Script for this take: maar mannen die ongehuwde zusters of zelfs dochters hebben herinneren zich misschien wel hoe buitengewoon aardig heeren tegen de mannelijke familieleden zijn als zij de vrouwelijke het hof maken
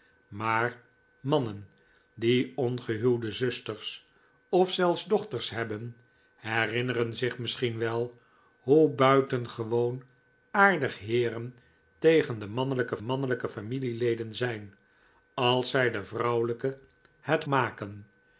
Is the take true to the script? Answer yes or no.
no